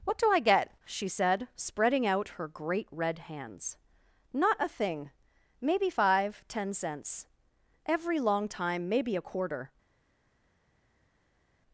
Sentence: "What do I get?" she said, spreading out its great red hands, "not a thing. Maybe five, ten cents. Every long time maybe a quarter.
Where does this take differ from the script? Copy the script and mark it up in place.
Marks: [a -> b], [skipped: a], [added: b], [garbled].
"What do I get?" she said, spreading out [its -> her] great red hands, "not a thing. Maybe five, ten cents. Every long time maybe a quarter.